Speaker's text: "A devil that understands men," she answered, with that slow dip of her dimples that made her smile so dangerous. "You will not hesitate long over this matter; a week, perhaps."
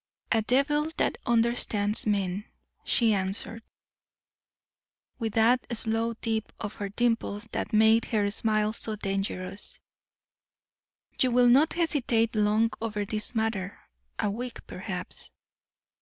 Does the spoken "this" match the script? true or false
true